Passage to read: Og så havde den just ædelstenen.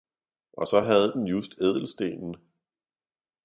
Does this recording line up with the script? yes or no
yes